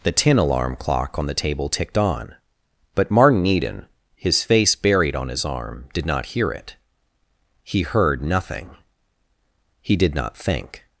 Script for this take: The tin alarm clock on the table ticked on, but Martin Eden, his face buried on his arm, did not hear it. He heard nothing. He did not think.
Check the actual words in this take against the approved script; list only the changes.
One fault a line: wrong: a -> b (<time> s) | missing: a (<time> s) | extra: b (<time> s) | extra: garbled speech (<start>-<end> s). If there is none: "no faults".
no faults